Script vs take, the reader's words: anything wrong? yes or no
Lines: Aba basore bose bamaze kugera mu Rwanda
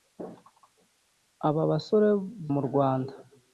yes